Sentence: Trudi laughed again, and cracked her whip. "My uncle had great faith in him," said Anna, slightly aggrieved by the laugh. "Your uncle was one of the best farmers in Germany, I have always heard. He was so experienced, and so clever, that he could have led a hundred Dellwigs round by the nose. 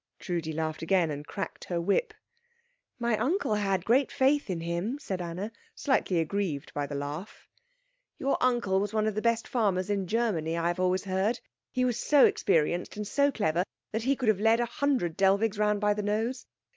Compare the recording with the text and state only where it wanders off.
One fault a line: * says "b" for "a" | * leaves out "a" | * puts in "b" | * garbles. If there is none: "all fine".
all fine